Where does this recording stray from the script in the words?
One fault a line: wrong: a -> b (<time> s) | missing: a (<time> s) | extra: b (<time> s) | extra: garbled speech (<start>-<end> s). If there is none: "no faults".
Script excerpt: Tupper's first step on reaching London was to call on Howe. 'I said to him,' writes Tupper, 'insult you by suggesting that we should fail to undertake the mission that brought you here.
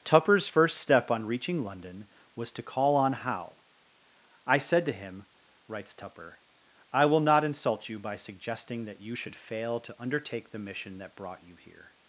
extra: I will not (6.9 s)
wrong: we -> you (9.0 s)